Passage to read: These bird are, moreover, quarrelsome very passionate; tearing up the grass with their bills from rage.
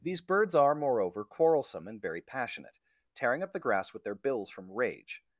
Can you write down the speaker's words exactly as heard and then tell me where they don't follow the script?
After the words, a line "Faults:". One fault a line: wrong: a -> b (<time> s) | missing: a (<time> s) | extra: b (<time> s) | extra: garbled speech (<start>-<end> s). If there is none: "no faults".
These birds are, moreover, quarrelsome and very passionate; tearing up the grass with their bills from rage.
Faults:
wrong: bird -> birds (0.2 s)
extra: and (1.9 s)